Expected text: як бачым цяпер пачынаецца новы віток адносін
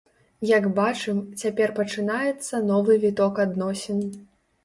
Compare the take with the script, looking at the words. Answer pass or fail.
pass